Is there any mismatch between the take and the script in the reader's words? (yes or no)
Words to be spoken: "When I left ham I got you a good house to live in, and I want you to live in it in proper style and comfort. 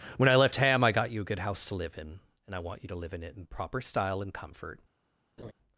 no